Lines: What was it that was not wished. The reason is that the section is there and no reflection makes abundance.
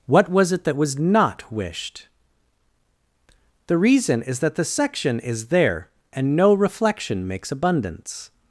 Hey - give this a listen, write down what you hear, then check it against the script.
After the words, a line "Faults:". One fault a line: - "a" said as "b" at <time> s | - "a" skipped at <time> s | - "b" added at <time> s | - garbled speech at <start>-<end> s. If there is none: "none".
What was it that was not wished. The reason is that the section is there and no reflection makes abundance.
Faults:
none